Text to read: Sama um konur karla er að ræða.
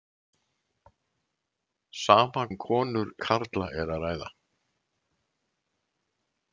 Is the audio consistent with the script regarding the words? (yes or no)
yes